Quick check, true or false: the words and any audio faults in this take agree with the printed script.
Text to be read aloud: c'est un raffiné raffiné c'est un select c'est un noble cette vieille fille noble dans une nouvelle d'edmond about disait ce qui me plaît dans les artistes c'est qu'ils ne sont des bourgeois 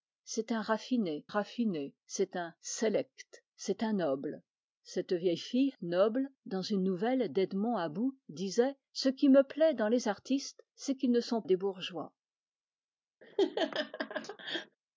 false